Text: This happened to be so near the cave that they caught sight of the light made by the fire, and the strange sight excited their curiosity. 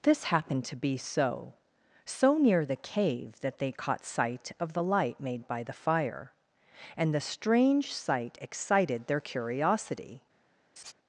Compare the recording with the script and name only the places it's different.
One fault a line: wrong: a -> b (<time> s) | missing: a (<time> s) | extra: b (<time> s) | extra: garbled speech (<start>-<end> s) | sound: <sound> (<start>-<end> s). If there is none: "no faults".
extra: so (2.0 s)
sound: laugh (10.8-10.9 s)